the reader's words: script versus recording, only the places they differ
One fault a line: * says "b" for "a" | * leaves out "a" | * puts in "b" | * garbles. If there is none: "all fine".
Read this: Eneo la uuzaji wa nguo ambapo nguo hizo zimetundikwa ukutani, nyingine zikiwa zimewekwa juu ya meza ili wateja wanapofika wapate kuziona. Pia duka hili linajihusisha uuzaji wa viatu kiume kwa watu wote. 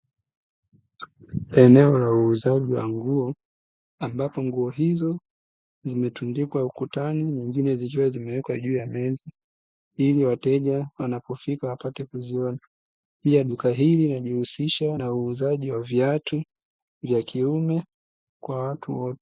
* puts in "na"
* puts in "vya"